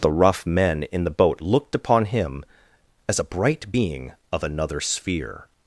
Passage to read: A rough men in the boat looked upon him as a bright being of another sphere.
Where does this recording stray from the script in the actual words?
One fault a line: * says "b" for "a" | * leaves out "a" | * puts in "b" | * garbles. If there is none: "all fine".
* says "The" for "A"